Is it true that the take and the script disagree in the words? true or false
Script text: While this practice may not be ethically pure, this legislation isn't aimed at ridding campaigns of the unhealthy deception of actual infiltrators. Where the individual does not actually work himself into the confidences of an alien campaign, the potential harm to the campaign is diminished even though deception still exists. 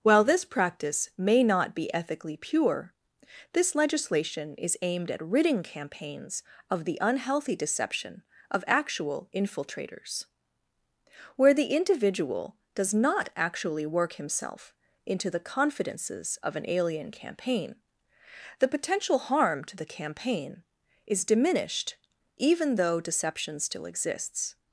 true